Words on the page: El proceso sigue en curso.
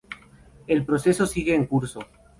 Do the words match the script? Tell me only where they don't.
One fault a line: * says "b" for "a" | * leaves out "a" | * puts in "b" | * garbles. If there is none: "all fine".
all fine